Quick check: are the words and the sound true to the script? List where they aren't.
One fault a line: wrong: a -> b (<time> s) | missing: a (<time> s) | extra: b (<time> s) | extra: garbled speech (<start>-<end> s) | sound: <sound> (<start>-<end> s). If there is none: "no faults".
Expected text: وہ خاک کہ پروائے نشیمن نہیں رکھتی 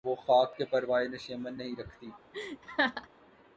sound: laugh (2.3-3.1 s)